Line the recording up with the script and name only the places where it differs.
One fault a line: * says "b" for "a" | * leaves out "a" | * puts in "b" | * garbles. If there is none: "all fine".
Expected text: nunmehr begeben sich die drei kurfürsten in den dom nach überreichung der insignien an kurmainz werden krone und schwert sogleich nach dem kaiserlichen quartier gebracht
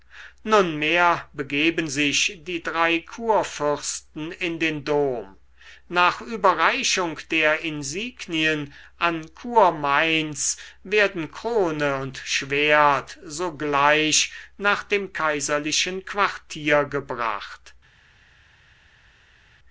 all fine